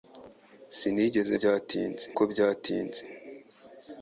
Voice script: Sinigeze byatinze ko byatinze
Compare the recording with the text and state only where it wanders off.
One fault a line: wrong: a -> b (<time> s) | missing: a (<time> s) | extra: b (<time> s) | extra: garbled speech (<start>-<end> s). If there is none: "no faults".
no faults